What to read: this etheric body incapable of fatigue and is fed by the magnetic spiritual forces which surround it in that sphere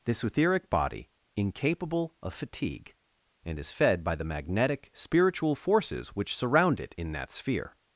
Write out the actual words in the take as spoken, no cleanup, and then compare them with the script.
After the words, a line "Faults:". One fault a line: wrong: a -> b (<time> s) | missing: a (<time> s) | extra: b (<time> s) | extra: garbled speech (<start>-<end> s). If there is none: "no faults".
this etheric body incapable of fatigue and is fed by the magnetic spiritual forces which surround it in that sphere
Faults:
no faults